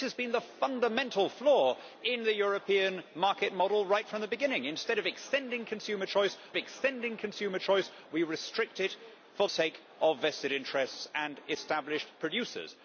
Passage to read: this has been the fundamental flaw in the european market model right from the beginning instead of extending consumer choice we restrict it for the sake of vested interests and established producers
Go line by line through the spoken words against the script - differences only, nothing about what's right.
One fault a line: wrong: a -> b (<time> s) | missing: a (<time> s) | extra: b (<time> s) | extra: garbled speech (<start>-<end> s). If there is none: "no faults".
extra: extending consumer choice (6.5 s)
missing: the (9.5 s)